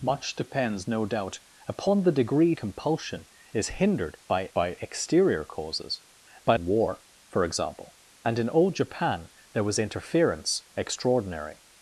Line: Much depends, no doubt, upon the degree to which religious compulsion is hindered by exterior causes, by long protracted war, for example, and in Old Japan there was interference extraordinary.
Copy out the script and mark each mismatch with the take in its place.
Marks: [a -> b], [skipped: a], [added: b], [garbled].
Much depends, no doubt, upon the degree [skipped: to which religious] compulsion is hindered by [added: by] exterior causes, by [skipped: long protracted] war, for example, and in Old Japan there was interference extraordinary.